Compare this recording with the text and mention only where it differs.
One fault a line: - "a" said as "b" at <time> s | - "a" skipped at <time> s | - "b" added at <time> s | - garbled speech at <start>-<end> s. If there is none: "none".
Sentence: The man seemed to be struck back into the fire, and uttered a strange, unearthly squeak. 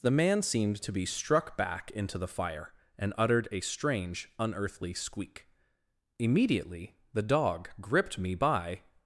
- "Immediately the dog gripped me by" added at 6.2 s